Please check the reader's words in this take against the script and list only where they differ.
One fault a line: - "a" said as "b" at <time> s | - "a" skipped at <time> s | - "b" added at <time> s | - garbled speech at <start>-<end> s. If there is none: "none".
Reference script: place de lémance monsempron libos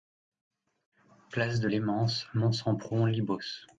none